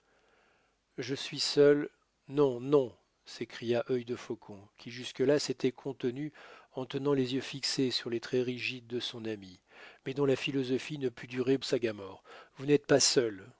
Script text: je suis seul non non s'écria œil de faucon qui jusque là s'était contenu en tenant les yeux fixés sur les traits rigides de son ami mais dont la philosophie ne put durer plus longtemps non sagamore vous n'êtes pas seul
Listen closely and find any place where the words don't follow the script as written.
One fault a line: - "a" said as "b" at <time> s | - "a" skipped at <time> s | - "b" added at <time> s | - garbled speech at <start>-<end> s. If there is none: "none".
- "plus longtemps non" skipped at 11.6 s